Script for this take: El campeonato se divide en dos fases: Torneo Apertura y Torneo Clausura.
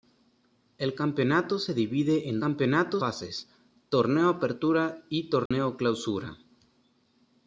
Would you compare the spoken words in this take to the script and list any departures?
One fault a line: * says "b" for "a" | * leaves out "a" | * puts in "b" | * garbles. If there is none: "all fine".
* says "campeonato" for "dos"